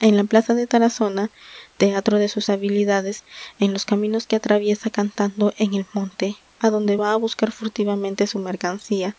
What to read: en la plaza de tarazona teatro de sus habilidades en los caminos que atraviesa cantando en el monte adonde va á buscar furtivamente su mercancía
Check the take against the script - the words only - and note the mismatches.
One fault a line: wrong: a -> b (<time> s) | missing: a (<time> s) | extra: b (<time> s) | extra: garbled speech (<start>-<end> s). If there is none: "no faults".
no faults